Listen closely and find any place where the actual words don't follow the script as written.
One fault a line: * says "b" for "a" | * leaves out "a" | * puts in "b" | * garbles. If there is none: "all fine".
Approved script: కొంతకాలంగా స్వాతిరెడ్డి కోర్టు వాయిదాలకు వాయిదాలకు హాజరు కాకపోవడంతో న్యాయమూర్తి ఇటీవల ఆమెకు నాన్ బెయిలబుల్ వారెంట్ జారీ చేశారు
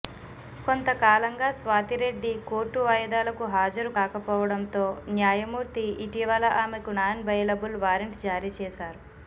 * leaves out "వాయిదాలకు"